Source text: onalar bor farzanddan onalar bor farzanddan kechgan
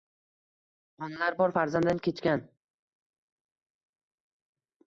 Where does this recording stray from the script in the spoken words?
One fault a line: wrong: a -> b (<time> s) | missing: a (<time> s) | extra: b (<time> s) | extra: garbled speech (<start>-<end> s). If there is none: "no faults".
missing: onalar bor farzanddan (2.1 s)